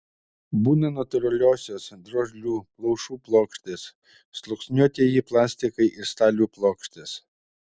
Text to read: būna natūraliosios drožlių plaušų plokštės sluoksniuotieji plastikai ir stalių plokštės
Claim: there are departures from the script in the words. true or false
false